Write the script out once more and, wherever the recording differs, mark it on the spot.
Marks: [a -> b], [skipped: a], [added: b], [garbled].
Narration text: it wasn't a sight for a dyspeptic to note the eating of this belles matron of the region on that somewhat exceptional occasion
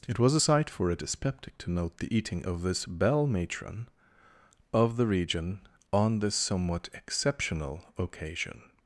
it [wasn't -> was] a sight for a dyspeptic to note the eating of this [belles -> belle] matron of the region on [that -> this] somewhat exceptional occasion